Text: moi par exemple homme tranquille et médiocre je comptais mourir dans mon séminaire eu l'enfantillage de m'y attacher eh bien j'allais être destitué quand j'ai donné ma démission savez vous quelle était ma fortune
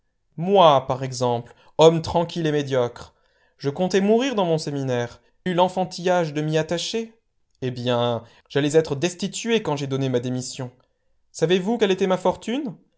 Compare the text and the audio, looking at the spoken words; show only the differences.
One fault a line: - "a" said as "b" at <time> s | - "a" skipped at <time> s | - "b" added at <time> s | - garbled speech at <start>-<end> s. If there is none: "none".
none